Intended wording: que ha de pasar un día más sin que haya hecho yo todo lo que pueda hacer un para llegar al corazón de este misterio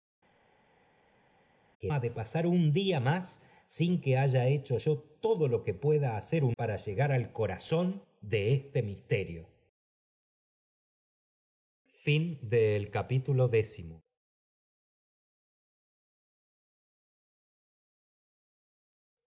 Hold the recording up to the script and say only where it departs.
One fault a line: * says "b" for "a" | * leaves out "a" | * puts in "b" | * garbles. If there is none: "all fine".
all fine